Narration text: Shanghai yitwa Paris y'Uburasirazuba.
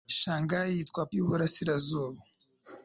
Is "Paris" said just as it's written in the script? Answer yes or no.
no